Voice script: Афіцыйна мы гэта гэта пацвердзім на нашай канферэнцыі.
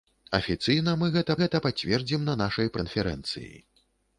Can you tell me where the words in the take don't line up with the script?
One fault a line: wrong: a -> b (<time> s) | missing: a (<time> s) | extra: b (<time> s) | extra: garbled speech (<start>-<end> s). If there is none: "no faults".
no faults